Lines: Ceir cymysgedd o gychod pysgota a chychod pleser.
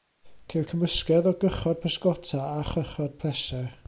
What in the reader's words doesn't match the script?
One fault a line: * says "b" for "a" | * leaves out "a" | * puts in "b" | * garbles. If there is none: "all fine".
all fine